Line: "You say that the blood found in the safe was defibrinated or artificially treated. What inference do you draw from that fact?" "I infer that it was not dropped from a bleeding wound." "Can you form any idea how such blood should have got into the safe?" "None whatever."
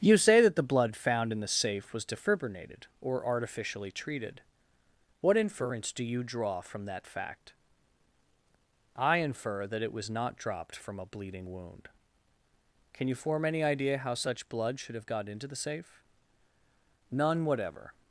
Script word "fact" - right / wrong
right